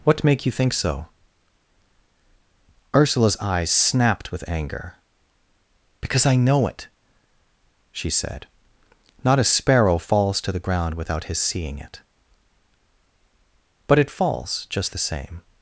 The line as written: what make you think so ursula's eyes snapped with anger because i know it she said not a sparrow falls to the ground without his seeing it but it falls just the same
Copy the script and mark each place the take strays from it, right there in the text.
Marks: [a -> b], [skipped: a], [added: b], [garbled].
what make you think so ursula's eyes snapped with anger because i know it she said not a sparrow falls to the ground without his seeing it but it falls just the same